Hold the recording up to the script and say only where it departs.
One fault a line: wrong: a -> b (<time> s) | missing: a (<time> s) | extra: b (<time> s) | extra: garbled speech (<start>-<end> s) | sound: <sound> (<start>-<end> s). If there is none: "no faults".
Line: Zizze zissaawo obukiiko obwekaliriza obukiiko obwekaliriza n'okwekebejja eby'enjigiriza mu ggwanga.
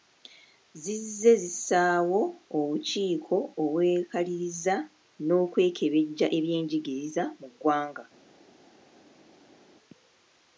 missing: obukiiko obwekaliriza (4.8 s)